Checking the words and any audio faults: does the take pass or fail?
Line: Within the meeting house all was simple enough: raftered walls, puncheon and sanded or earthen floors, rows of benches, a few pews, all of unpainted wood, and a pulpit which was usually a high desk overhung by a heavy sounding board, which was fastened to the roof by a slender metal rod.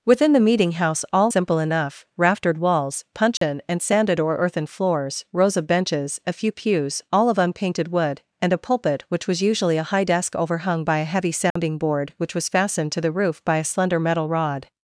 fail